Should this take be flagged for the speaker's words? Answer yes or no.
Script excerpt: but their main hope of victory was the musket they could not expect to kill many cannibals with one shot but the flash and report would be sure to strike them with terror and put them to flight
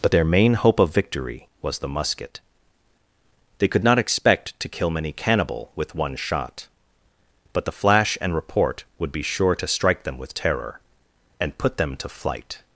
yes